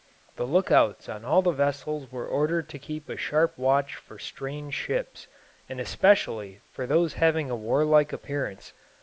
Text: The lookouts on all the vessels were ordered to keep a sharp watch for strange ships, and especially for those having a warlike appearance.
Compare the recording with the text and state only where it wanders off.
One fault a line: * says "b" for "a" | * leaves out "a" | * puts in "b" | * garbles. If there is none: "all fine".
all fine